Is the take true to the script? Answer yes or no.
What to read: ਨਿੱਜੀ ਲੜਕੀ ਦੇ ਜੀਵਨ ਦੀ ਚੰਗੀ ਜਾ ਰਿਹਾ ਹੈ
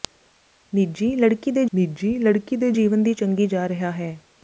no